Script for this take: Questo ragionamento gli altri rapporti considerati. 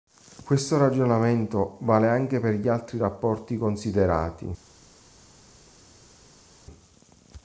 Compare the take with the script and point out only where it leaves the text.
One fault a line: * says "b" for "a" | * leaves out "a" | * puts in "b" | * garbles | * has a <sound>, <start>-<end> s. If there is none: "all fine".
* puts in "vale anche per"